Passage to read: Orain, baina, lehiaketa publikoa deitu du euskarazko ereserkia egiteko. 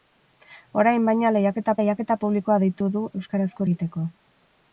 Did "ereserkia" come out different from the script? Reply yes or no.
yes